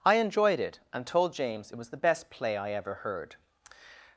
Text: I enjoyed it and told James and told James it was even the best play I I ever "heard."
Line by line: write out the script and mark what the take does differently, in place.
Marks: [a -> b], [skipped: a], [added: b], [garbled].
I enjoyed it and told James [skipped: and told James] it was [skipped: even] the best play I [skipped: I] ever "heard."